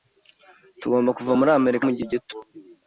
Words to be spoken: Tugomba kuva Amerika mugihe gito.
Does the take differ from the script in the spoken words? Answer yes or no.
yes